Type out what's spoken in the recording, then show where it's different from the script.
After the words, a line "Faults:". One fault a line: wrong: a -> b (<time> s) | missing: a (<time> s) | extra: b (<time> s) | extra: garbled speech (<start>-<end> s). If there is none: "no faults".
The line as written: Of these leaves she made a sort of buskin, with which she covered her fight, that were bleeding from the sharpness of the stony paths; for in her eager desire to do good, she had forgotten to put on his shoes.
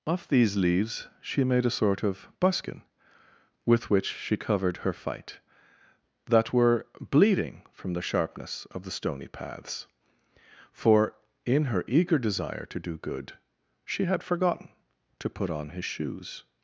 Of these leaves she made a sort of buskin, with which she covered her fight, that were bleeding from the sharpness of the stony paths; for in her eager desire to do good, she had forgotten to put on his shoes.
Faults:
no faults